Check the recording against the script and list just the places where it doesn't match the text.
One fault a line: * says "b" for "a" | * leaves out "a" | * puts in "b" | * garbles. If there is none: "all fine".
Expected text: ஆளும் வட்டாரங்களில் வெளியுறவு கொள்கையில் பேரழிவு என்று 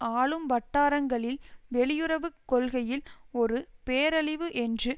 * puts in "ஒரு"